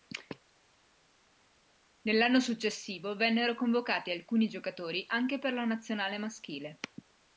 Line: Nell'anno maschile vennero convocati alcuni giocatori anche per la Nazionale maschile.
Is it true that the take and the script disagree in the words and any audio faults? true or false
true